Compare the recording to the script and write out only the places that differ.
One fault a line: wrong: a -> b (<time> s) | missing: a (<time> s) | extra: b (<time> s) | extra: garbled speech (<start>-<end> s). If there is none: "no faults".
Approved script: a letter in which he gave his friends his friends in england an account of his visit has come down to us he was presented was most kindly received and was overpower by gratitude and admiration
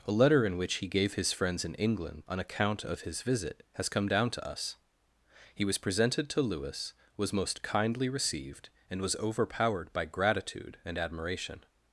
missing: his friends (1.6 s)
extra: to lewis (6.3 s)
wrong: overpower -> overpowered (9.2 s)